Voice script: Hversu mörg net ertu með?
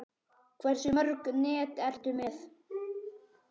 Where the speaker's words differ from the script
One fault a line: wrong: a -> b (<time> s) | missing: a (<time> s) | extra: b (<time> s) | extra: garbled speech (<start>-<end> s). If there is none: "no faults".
no faults